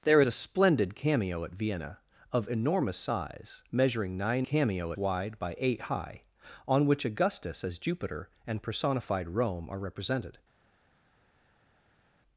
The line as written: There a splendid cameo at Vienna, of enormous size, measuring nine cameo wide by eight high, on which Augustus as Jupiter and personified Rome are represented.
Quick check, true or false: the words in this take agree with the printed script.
true